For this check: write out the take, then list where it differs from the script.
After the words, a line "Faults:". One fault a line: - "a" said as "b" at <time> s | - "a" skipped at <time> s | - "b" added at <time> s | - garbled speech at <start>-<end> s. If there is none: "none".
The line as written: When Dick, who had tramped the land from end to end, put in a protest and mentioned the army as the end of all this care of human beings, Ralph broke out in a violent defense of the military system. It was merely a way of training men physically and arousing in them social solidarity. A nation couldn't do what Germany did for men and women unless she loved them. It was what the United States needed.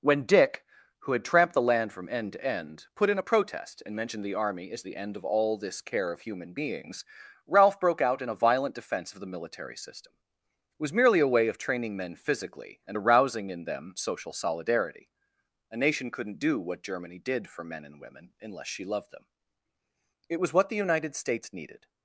When Dick, who had tramped the land from end to end, put in a protest and mentioned the army as the end of all this care of human beings, Ralph broke out in a violent defense of the military system. It was merely a way of training men physically and arousing in them social solidarity. A nation couldn't do what Germany did for men and women unless she loved them. It was what the United States needed.
Faults:
none